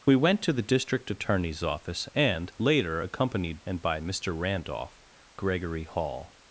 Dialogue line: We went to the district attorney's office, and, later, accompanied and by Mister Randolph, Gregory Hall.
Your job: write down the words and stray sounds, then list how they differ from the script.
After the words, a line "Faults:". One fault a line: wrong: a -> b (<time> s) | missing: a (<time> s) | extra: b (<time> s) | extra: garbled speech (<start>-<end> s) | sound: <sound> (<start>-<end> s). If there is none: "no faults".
We went to the district attorney's office, and, later, accompanied and by Mister Randolph, Gregory Hall.
Faults:
no faults